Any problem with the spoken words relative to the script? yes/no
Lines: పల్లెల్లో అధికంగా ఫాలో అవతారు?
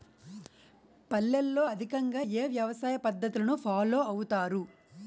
yes